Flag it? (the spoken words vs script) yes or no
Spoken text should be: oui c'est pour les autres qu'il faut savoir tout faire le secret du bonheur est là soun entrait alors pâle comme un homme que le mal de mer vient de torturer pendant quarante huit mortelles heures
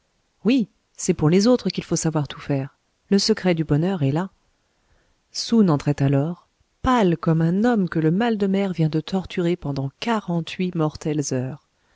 no